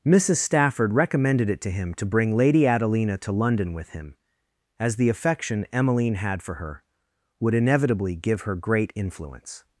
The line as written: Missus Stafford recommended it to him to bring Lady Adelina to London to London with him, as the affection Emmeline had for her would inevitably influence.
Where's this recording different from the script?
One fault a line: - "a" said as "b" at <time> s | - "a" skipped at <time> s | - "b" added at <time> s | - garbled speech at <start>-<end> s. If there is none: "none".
- "to London" skipped at 3.7 s
- "give her great" added at 8.2 s